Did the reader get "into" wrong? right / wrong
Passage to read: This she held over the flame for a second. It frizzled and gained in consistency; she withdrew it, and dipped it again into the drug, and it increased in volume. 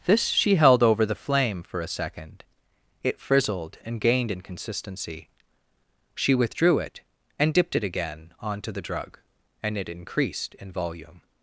wrong